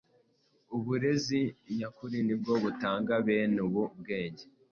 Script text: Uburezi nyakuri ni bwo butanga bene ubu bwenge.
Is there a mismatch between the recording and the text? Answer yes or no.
no